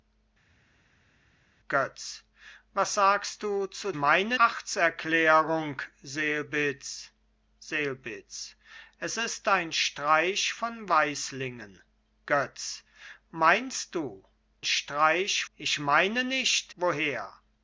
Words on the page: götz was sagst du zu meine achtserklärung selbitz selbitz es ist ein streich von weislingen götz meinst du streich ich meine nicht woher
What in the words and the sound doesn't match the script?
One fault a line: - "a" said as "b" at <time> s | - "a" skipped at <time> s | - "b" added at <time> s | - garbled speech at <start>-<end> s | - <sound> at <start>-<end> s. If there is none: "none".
none